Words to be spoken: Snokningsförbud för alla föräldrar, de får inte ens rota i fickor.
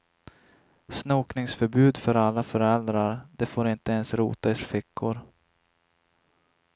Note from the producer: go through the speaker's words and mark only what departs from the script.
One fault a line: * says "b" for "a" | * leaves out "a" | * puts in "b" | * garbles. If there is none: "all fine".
all fine